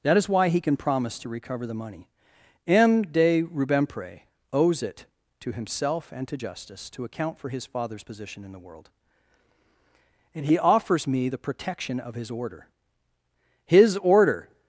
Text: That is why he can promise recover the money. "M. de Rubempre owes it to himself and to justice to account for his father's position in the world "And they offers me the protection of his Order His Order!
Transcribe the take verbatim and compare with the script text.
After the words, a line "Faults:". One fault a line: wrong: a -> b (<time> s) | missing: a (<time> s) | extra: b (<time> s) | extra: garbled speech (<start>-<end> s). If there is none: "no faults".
That is why he can promise to recover the money. "M. de Rubempre owes it to himself and to justice to account for his father's position in the world "And he offers me the protection of his Order His Order!
Faults:
extra: to (1.2 s)
wrong: they -> he (10.4 s)